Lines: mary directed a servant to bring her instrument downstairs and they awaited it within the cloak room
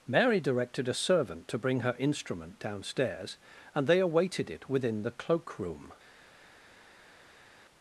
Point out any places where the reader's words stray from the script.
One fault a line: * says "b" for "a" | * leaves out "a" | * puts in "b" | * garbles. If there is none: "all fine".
all fine